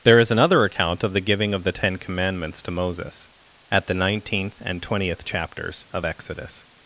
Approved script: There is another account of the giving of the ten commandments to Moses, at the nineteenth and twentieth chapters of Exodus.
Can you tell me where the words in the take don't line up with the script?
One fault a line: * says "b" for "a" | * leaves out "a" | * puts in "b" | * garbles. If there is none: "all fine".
all fine